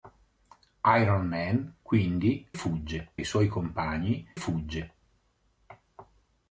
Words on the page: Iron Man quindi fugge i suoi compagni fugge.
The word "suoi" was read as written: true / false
true